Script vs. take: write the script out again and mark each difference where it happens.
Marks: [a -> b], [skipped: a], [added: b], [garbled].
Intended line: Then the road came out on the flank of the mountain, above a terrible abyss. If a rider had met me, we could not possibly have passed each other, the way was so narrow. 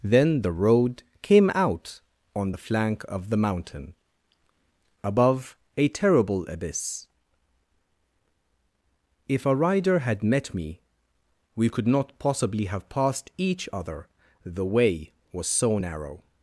Then the road came out on the flank of the mountain, above a terrible abyss. If a rider had met me, we could not possibly have passed each other, the way was so narrow.